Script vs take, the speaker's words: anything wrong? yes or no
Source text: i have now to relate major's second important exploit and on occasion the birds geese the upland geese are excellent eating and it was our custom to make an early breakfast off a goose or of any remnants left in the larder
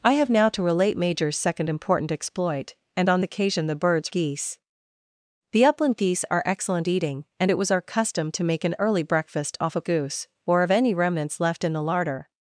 no